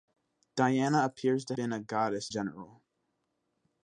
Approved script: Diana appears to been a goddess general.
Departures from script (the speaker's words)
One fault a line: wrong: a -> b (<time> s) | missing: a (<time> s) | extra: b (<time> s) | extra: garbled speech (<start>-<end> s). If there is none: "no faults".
no faults